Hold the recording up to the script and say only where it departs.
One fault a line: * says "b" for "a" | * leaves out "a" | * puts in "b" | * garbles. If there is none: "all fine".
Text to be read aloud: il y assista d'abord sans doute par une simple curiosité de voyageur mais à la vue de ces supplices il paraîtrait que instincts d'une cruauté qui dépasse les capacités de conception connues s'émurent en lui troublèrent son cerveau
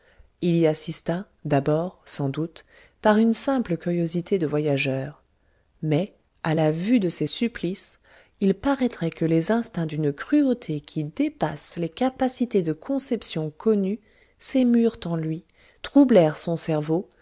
* puts in "les"